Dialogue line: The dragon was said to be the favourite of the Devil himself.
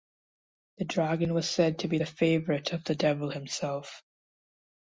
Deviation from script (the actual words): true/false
false